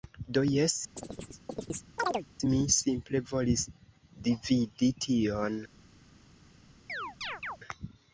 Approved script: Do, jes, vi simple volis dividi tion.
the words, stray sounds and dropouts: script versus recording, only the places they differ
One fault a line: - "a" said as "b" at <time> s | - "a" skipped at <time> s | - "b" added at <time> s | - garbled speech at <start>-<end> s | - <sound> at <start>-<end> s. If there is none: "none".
- chirp at 1.0-2.3 s
- "vi" said as "mi" at 2.5 s
- chirp at 6.9-7.6 s